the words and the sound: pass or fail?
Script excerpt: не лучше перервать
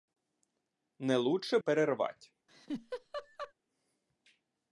fail